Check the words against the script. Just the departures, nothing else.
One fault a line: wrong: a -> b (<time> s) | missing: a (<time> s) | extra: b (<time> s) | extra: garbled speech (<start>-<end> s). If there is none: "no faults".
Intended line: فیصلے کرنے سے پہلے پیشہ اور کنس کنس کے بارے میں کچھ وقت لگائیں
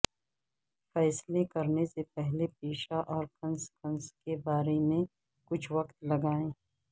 no faults